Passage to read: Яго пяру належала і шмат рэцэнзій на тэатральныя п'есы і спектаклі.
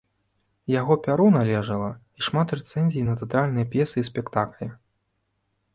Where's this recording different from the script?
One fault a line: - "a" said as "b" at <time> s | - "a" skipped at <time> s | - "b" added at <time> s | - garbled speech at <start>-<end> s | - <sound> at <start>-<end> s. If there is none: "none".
none